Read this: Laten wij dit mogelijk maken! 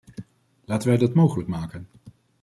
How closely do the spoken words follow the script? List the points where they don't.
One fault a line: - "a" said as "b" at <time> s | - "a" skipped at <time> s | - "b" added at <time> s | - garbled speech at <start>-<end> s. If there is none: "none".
- "dit" said as "dat" at 1.0 s